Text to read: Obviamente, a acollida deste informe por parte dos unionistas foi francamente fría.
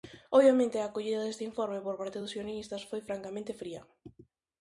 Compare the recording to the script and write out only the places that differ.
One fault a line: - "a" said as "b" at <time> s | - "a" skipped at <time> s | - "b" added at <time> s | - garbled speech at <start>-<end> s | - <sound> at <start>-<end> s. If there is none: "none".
none